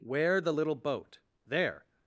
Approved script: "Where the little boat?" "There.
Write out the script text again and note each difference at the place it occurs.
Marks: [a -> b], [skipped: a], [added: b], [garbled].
"Where the little boat?" "There.